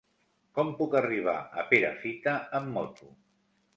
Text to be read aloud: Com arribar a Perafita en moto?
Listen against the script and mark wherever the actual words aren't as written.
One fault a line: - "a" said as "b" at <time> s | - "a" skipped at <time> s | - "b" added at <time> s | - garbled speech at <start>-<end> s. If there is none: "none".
- "puc" added at 0.8 s
- "en" said as "amb" at 2.6 s